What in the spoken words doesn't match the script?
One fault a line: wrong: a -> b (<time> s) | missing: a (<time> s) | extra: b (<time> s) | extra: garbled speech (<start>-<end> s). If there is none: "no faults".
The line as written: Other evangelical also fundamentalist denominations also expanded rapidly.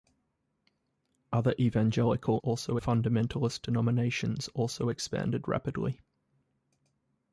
no faults